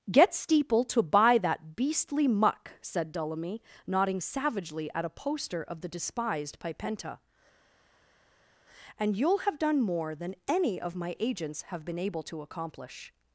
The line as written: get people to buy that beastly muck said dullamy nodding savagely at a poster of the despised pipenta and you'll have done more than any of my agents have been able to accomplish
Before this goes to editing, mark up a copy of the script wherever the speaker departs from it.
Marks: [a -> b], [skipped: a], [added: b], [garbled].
get [people -> steeple] to buy that beastly muck said dullamy nodding savagely at a poster of the despised pipenta and you'll have done more than any of my agents have been able to accomplish